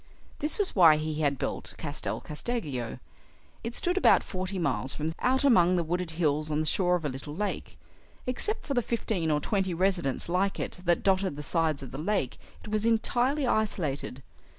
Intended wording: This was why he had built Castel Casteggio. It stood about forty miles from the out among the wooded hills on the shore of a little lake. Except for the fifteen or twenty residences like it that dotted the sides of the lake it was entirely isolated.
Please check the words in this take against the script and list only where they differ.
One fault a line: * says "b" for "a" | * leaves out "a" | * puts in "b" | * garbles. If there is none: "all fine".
all fine